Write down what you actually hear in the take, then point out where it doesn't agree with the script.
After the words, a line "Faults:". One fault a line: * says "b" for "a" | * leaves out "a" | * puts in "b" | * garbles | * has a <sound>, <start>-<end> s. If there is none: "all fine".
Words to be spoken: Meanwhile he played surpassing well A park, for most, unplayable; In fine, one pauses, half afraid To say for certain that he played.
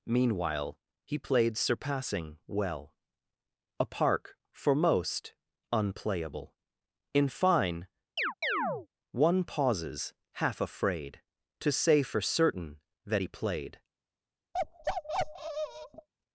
Meanwhile he played surpassing well A park, for most, unplayable; In fine, one pauses, half afraid To say for certain that he played.
Faults:
* has a chirp, 8.2-8.9 s
* has a bark, 14.5-16.1 s